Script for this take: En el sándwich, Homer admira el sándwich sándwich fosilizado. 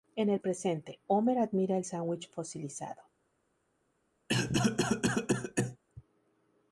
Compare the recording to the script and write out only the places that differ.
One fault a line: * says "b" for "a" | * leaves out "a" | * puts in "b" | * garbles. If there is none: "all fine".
* says "presente" for "sándwich"
* leaves out "sándwich"